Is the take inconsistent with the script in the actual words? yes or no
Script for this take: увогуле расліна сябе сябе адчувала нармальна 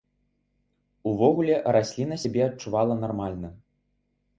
yes